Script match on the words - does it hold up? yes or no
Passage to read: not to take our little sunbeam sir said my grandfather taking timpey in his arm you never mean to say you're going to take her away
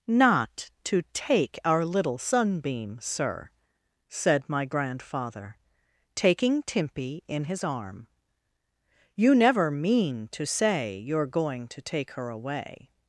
yes